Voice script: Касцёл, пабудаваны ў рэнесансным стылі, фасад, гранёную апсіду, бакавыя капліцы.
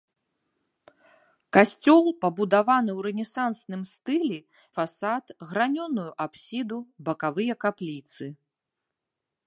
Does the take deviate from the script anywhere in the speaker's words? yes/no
no